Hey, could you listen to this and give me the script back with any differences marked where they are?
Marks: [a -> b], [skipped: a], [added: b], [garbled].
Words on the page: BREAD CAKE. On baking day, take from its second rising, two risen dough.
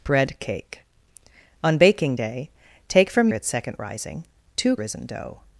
BREAD CAKE. On baking day, take from its second rising, two risen dough.